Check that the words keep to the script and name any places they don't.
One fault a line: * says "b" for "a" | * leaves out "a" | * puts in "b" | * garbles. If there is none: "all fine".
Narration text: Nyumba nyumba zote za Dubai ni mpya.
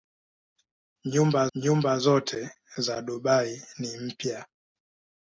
all fine